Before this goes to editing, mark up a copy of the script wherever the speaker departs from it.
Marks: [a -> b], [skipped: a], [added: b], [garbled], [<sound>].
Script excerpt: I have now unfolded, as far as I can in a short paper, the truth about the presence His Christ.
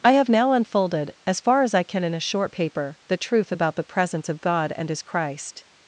I have now unfolded, as far as I can in a short paper, the truth about the presence [added: of God and] His Christ.